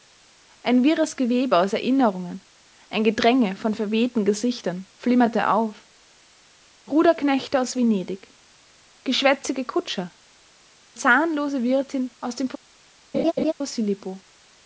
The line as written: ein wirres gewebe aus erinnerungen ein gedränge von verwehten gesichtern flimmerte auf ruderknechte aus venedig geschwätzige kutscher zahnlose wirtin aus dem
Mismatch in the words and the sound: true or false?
true